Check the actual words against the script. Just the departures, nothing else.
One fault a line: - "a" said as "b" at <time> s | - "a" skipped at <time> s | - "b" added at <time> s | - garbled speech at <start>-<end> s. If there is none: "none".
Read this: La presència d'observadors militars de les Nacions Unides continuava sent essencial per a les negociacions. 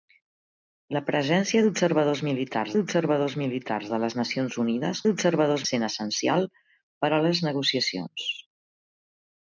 - "d'observadors militars" added at 2.8 s
- "continuava" said as "d'observadors" at 5.1 s